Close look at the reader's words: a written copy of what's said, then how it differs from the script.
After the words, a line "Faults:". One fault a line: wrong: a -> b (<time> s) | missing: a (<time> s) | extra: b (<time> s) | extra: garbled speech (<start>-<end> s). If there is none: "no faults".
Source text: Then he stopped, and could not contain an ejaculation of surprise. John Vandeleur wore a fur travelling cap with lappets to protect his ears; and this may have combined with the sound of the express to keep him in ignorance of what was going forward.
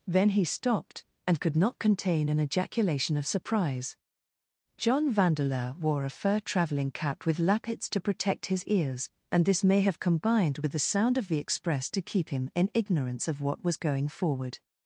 Then he stopped, and could not contain an ejaculation of surprise. John Vandeleur wore a fur travelling cap with lappets to protect his ears; and this may have combined with the sound of the express to keep him in ignorance of what was going forward.
Faults:
no faults